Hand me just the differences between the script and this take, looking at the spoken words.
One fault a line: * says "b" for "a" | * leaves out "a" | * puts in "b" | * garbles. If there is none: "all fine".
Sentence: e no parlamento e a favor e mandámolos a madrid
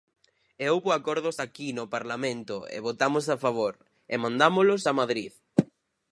* puts in "houbo acordos aquí"
* puts in "votamos"